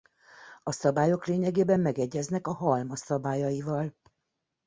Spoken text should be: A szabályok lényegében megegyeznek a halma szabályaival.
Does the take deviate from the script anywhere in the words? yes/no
no